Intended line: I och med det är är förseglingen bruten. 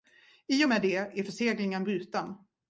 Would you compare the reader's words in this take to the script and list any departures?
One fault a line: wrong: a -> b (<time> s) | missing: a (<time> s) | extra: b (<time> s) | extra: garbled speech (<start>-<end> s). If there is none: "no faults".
missing: är (1.2 s)